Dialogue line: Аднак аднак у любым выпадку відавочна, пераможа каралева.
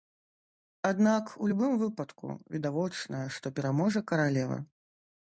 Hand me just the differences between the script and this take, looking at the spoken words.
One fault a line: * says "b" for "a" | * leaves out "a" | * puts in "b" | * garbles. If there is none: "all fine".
* leaves out "аднак"
* puts in "што"